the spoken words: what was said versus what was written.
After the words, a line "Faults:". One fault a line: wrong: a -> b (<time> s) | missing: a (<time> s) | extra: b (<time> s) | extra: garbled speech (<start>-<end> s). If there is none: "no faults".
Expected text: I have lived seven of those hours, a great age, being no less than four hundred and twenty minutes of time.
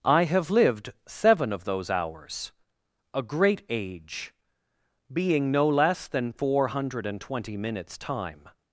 I have lived seven of those hours, a great age, being no less than four hundred and twenty minutes time.
Faults:
missing: of (8.0 s)